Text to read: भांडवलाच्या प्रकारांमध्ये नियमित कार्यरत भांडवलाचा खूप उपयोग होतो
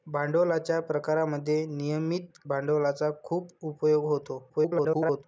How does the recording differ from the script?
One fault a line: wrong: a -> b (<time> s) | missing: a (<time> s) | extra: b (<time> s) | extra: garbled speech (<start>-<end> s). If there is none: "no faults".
missing: कार्यरत (2.4 s)
extra: garbled speech (4.5-5.2 s)